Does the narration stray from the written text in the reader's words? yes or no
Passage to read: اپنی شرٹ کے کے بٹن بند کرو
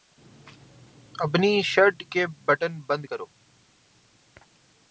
yes